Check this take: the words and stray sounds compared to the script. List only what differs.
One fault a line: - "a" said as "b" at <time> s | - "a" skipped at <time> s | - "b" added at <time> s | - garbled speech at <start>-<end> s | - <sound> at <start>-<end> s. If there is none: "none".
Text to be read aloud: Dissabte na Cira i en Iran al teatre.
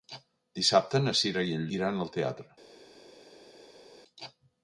none